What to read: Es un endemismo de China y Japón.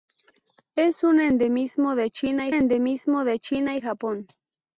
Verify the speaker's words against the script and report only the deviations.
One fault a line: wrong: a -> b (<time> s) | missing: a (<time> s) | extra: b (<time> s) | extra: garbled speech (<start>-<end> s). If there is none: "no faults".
extra: endemismo de China (2.5 s)